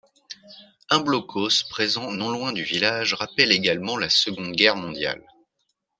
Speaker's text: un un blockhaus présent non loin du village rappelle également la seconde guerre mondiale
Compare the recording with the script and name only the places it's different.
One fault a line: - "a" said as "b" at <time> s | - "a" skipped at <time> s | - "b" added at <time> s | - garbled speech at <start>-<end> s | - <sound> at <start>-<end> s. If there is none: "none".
- "un" skipped at 1.0 s